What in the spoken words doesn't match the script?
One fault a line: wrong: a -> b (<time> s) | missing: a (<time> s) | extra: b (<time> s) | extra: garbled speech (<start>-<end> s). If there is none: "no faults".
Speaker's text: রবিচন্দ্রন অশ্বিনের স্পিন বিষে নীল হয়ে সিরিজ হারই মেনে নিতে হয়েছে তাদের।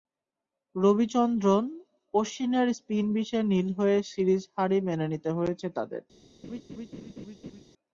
no faults